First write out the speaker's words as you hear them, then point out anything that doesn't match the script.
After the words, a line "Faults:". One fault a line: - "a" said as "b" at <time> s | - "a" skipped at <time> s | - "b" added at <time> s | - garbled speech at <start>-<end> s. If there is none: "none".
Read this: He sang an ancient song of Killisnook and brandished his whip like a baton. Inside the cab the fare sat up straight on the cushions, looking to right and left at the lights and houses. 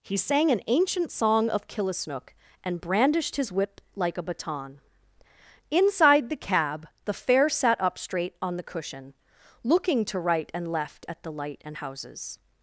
He sang an ancient song of Killisnook and brandished his whip like a baton. Inside the cab the fare sat up straight on the cushion, looking to right and left at the light and houses.
Faults:
- "cushions" said as "cushion" at 8.6 s
- "lights" said as "light" at 11.3 s